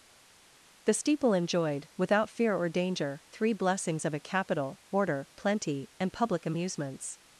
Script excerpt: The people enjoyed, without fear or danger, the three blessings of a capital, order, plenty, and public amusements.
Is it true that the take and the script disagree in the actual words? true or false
true